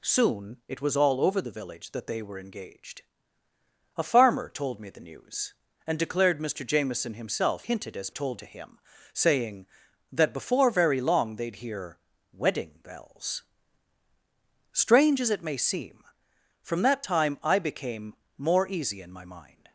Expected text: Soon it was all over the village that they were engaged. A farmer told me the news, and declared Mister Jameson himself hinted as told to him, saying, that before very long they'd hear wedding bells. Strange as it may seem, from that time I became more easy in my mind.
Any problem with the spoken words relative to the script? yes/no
no